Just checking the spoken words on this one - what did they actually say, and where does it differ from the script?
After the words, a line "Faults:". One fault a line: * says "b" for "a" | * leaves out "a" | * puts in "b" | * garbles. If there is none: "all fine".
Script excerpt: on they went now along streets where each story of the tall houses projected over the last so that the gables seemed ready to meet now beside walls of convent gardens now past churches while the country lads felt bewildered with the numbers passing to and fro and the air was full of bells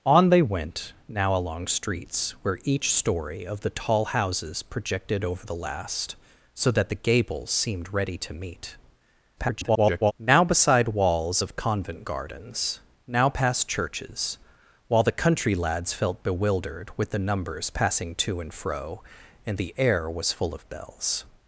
on they went now along streets where each story of the tall houses projected over the last so that the gables seemed ready to meet [garbled] now beside walls of convent gardens now past churches while the country lads felt bewildered with the numbers passing to and fro and the air was full of bells
Faults:
* garbles